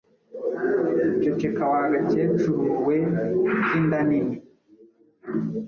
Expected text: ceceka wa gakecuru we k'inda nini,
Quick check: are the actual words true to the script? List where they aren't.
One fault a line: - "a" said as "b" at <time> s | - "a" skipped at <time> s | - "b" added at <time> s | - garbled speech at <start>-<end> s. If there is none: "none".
none